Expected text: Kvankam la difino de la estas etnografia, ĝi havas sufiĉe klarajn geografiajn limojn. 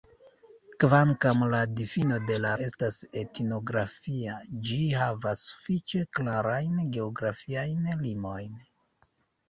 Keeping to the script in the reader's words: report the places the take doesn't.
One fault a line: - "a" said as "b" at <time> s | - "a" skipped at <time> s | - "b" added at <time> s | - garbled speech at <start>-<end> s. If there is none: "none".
none